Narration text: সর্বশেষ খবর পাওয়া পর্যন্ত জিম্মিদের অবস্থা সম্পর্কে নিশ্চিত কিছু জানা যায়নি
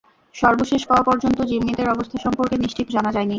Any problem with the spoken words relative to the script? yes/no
yes